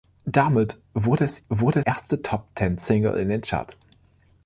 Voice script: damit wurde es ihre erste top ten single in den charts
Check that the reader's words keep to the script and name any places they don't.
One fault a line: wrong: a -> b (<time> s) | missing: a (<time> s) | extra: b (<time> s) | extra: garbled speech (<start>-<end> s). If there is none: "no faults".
wrong: ihre -> wurde (1.5 s)